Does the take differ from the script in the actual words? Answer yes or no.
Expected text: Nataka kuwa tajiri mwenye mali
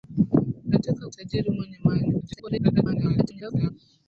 yes